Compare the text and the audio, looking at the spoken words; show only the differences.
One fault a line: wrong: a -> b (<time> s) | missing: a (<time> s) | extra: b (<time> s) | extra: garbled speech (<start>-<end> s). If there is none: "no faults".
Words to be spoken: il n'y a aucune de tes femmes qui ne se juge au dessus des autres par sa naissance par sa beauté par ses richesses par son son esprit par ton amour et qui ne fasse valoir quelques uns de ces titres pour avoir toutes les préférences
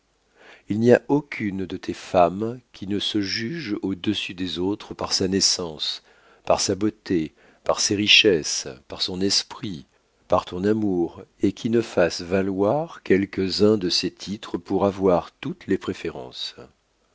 missing: son (9.2 s)